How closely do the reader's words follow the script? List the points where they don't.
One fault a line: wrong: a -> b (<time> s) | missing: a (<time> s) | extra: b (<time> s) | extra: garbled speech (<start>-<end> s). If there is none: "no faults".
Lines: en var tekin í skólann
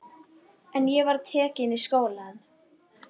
extra: ég (0.9 s)